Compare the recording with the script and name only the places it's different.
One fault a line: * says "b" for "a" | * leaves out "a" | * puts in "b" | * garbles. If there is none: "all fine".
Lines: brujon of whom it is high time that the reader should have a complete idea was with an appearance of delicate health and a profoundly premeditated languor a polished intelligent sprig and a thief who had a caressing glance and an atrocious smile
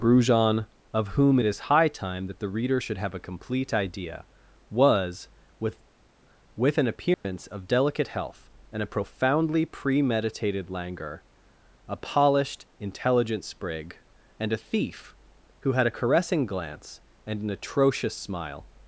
* puts in "with"